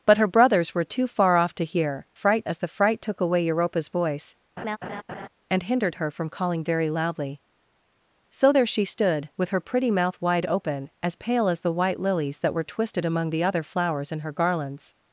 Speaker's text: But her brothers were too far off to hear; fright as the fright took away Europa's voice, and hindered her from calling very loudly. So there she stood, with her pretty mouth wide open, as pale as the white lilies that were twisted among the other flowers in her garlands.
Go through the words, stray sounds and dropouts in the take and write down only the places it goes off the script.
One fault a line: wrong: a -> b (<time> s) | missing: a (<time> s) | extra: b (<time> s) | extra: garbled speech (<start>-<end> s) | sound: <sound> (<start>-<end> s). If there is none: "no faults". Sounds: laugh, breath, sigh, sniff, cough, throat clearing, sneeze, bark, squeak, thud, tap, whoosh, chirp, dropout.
sound: laugh (4.6-5.3 s)